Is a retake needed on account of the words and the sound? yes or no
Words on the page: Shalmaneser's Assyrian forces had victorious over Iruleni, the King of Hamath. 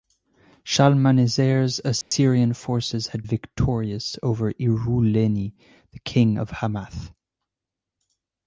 yes